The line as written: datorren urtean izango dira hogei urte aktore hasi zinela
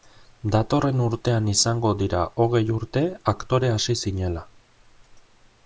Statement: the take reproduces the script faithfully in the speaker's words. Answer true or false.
true